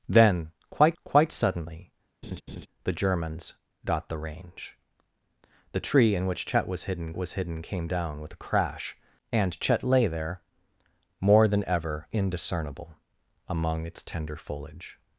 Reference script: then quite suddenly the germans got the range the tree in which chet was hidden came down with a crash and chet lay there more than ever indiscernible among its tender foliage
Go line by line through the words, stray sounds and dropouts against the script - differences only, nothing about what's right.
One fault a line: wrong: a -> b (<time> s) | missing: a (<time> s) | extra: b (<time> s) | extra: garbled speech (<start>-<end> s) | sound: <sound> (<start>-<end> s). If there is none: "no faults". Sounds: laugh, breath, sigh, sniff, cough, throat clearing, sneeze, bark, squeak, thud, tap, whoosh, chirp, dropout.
extra: quite (1.0 s)
sound: laugh (2.2-2.7 s)
extra: was hidden (7.2 s)